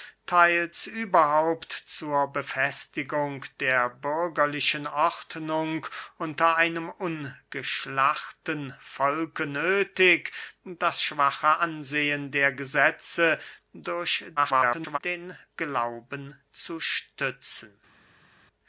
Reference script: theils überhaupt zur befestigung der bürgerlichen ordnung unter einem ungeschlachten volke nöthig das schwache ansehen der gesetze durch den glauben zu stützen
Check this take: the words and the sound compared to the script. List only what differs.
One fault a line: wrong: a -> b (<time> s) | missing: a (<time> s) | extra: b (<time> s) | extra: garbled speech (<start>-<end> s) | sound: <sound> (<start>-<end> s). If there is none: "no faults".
extra: garbled speech (14.4-15.0 s)